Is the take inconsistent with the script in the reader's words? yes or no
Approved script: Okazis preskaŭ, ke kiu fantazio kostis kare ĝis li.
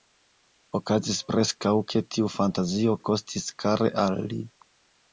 yes